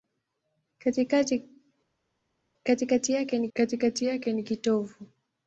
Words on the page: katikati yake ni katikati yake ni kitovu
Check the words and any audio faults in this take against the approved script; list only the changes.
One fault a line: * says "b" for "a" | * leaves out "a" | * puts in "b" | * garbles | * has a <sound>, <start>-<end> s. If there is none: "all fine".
all fine